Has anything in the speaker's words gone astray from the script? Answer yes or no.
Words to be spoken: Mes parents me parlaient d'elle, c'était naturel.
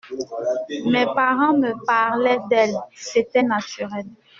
no